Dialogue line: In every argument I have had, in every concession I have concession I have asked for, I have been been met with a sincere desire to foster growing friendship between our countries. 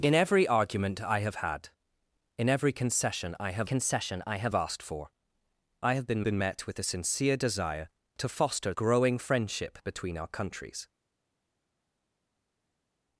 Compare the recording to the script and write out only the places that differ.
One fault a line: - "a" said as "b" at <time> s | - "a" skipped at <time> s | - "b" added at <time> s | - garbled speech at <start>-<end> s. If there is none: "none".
none